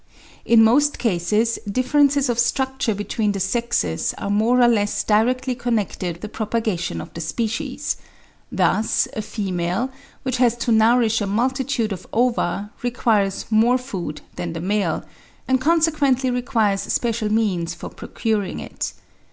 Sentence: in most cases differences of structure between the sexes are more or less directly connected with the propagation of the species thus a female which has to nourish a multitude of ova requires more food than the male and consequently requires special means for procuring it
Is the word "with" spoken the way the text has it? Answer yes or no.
no